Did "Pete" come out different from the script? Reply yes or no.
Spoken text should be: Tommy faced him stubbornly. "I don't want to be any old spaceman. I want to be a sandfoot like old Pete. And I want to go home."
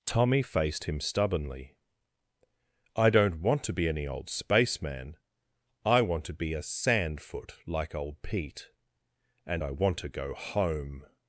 no